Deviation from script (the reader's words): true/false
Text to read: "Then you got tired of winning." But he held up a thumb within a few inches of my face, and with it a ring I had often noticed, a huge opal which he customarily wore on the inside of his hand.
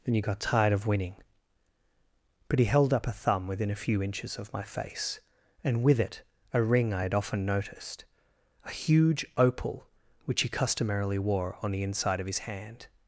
false